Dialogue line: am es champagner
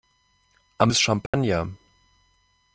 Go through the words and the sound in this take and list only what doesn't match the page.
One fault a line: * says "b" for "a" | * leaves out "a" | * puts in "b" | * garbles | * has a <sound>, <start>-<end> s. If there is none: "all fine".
* has a dropout, 1.3-1.3 s